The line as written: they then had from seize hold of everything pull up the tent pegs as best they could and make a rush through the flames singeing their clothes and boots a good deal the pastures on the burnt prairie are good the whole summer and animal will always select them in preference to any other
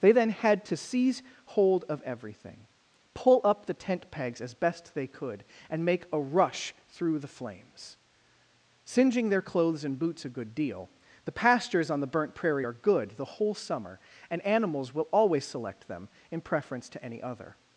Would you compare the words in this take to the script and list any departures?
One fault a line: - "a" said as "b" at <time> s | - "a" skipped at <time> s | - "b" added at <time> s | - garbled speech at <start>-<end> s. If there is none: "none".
- "from" said as "to" at 0.7 s
- "animal" said as "animals" at 14.4 s